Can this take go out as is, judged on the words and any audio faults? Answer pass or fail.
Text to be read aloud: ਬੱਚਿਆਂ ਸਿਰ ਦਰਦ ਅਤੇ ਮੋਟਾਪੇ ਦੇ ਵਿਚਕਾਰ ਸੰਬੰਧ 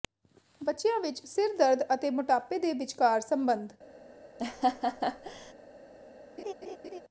fail